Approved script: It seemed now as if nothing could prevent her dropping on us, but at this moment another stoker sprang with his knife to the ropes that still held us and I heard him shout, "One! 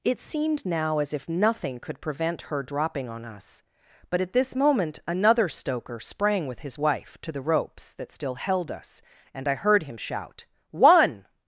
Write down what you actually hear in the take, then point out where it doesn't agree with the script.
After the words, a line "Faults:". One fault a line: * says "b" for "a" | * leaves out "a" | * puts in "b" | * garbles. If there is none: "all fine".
It seemed now as if nothing could prevent her dropping on us, but at this moment another stoker sprang with his wife to the ropes that still held us and I heard him shout, "One!
Faults:
* says "wife" for "knife"